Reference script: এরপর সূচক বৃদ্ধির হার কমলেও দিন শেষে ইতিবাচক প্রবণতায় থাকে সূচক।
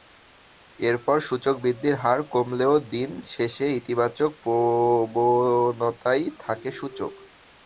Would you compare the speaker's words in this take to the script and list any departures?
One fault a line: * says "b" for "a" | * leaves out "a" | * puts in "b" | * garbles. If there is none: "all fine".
all fine